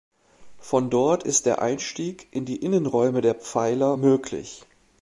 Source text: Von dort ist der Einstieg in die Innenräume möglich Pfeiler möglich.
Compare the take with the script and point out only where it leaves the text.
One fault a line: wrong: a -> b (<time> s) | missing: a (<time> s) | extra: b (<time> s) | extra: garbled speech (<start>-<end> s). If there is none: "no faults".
wrong: möglich -> der (3.2 s)